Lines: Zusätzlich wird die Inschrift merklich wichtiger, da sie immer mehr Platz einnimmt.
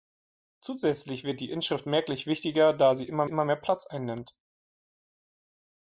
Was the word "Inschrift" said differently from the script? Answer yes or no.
no